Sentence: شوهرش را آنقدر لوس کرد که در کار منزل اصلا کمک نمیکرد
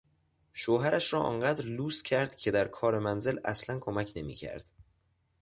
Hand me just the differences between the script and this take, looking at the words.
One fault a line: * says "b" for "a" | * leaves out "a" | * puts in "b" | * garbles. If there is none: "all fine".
all fine